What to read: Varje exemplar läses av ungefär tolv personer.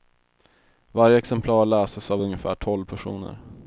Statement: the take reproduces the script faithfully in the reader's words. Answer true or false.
true